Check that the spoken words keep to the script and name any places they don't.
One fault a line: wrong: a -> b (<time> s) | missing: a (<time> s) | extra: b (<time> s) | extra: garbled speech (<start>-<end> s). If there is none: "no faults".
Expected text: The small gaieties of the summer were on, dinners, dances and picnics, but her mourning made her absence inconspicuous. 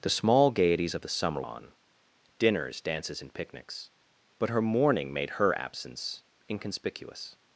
missing: were (1.4 s)